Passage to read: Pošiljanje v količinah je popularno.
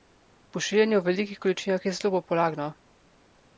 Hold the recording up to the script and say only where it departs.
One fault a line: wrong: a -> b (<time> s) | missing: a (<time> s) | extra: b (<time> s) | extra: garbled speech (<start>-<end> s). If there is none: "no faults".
extra: velikih (1.1 s)
extra: zelo (2.0 s)